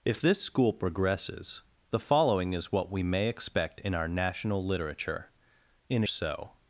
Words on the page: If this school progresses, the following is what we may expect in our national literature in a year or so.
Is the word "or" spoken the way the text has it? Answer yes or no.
no